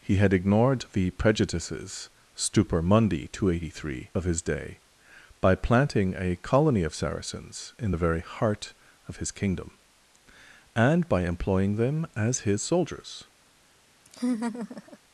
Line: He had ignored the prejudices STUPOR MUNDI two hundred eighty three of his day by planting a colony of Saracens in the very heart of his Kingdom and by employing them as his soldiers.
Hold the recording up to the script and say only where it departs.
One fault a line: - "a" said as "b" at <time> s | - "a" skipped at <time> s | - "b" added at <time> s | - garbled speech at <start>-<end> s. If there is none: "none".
none